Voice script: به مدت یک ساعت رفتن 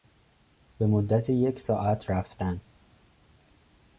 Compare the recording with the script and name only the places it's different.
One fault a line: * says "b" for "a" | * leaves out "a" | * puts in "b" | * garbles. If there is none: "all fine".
all fine